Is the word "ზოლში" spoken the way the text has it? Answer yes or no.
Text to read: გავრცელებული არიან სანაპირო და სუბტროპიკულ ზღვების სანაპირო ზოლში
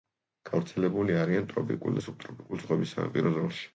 yes